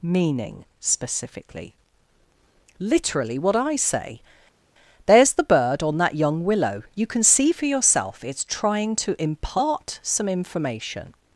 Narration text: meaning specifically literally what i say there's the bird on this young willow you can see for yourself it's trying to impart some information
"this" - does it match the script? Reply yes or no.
no